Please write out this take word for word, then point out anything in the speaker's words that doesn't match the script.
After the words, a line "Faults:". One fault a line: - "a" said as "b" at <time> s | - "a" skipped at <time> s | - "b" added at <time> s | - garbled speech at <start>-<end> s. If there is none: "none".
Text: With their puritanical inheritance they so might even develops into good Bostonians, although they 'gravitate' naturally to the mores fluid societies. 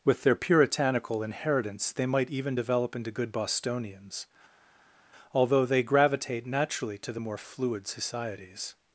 With their puritanical inheritance they might even develop into good Bostonians, although they 'gravitate' naturally to the more fluid societies.
Faults:
- "so" skipped at 2.1 s
- "develops" said as "develop" at 2.5 s
- "mores" said as "more" at 7.2 s